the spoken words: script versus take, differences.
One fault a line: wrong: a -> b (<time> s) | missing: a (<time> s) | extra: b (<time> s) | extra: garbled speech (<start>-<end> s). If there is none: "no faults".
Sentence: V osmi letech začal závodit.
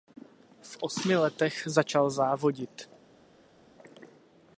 no faults